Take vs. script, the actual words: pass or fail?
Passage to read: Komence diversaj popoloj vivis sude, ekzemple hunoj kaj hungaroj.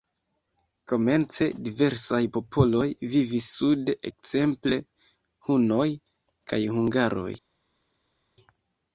pass